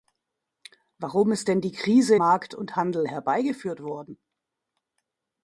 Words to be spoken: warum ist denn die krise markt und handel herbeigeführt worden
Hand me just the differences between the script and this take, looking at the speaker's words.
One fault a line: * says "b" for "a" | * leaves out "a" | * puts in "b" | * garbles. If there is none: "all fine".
all fine